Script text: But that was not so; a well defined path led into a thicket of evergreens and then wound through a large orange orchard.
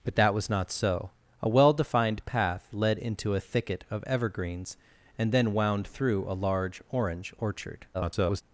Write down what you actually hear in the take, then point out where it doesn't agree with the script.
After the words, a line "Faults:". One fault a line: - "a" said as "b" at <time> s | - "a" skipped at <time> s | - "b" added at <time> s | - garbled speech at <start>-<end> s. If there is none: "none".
But that was not so; a well defined path led into a thicket of evergreens and then wound through a large orange orchard. [garbled]
Faults:
- garbled speech at 7.9-8.4 s